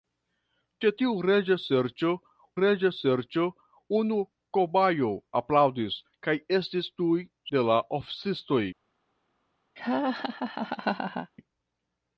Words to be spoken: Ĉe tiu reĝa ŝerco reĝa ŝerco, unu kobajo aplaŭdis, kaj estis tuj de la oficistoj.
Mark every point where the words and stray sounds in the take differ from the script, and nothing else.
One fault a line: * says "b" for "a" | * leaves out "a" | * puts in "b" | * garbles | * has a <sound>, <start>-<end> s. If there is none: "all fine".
* has a laugh, 9.8-11.3 s